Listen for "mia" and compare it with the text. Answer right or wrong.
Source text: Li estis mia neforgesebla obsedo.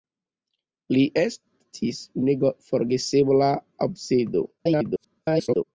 wrong